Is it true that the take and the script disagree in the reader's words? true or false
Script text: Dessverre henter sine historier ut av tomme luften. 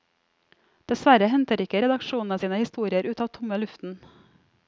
true